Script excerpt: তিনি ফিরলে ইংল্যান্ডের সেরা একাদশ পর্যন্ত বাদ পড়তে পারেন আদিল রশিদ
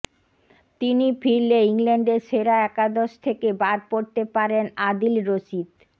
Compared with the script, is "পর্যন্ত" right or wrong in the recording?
wrong